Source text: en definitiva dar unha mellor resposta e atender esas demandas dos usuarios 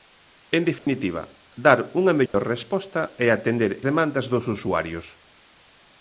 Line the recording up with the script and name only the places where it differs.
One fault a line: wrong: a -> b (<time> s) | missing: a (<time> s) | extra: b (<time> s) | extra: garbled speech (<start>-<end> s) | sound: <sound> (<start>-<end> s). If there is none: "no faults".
sound: dropout (0.8-0.9 s)
sound: dropout (2.3-2.3 s)
missing: esas (3.7 s)